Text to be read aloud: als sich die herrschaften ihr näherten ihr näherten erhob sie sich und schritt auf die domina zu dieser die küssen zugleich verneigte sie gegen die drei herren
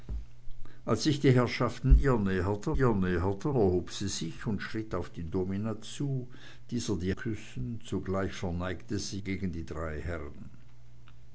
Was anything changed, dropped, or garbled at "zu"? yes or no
no